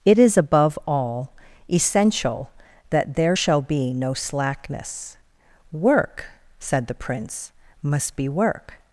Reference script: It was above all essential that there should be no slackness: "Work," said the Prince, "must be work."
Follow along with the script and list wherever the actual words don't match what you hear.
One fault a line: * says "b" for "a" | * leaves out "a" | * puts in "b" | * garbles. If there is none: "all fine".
* says "is" for "was"
* says "shall" for "should"